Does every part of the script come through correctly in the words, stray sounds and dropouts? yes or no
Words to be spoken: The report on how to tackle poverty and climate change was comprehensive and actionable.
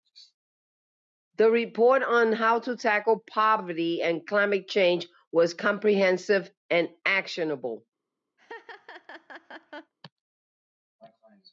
no